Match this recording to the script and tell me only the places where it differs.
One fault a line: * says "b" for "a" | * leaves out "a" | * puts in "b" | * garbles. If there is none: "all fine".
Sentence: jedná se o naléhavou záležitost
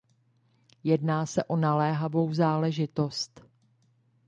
all fine